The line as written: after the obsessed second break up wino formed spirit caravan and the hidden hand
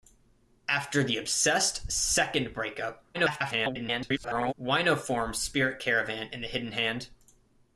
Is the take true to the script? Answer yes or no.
no